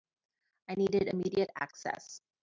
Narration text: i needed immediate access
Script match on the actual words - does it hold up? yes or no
yes